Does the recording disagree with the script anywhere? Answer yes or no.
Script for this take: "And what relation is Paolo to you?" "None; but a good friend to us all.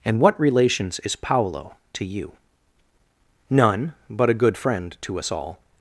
yes